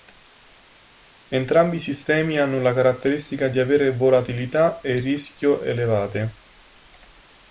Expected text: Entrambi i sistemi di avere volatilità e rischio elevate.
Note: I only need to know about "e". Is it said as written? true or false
true